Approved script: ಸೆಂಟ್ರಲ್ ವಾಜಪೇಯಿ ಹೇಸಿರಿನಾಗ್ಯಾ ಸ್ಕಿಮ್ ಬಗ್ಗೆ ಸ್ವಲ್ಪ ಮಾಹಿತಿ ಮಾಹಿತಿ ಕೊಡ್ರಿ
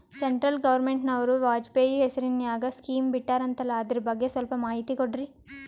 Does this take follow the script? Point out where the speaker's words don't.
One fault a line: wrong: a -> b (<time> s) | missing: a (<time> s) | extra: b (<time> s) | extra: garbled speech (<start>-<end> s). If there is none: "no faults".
extra: ಗವರ್ನಮೆಂಟನವರು (0.6 s)
extra: ಬಿಟ್ಟಾರಂತಲ್ಲ ಅದರ (3.1 s)
missing: ಮಾಹಿತಿ (5.0 s)